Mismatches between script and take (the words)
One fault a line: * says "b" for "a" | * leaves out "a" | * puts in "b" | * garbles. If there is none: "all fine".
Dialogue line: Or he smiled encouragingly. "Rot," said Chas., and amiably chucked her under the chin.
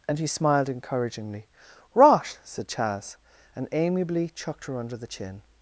* says "And" for "Or"